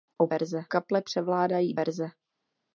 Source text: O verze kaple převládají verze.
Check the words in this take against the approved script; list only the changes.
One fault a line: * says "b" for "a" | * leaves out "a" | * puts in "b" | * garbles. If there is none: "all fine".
all fine